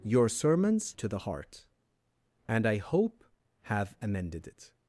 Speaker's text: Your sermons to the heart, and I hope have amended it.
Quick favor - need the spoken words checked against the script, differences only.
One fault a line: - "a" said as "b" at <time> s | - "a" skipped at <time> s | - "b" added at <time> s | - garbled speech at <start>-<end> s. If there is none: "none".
none